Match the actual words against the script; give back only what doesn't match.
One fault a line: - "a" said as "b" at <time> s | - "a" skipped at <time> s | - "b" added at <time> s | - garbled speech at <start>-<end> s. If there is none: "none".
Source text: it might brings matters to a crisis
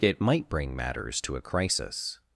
- "brings" said as "bring" at 0.5 s